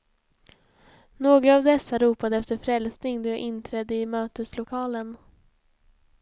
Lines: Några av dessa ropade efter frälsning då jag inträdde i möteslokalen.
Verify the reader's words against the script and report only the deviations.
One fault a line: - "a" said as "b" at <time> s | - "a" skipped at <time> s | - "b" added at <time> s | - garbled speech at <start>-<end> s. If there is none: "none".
none